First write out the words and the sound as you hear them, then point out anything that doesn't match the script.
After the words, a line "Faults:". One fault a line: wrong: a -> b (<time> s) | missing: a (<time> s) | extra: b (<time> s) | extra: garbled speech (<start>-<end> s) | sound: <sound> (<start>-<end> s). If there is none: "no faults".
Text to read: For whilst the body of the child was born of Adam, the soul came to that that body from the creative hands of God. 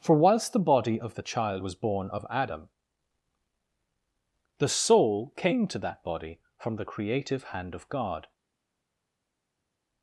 For whilst the body of the child was born of Adam, the soul came to that body from the creative hand of God.
Faults:
missing: that (6.0 s)
wrong: hands -> hand (7.5 s)